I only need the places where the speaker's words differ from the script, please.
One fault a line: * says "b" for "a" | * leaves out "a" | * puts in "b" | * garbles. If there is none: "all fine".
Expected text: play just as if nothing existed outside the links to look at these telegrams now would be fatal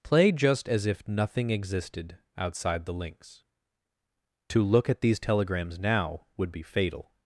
all fine